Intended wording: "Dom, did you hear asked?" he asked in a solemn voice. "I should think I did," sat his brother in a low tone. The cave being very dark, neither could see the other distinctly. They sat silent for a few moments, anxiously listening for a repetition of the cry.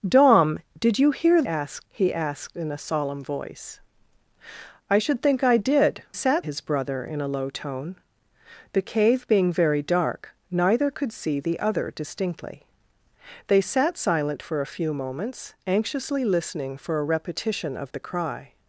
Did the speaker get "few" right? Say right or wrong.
right